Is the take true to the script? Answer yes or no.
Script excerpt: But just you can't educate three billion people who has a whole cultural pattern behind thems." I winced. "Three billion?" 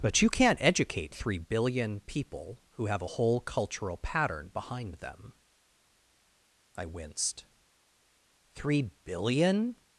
no